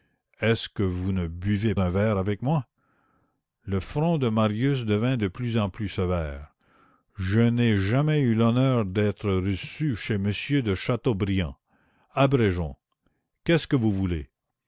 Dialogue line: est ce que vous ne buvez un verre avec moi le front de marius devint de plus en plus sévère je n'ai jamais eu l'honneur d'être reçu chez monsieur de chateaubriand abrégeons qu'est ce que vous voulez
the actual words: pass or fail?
pass